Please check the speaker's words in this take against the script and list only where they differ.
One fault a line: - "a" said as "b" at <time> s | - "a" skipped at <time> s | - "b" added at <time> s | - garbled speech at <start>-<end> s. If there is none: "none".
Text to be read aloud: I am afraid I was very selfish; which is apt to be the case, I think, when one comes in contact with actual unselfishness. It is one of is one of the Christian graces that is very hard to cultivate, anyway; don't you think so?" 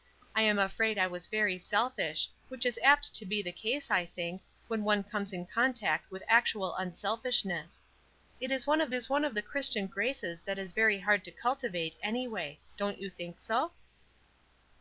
none